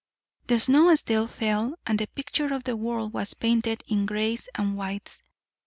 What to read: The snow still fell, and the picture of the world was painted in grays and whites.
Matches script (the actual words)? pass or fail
pass